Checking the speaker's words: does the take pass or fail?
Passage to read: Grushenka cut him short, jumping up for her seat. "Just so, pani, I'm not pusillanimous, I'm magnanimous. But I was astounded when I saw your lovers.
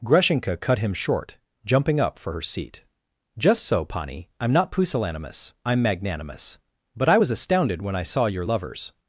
pass